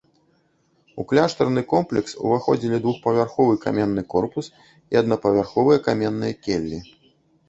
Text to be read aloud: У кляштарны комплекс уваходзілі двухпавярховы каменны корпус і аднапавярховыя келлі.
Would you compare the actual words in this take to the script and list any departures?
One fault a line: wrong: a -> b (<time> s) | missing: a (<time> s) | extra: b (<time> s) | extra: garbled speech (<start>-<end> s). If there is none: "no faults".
extra: каменныя (5.9 s)